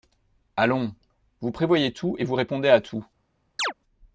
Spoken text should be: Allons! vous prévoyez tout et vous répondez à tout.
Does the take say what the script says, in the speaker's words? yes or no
yes